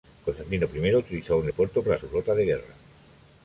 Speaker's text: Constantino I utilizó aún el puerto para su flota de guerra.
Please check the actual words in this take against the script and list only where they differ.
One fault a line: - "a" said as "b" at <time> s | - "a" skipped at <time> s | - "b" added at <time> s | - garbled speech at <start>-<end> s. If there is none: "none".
none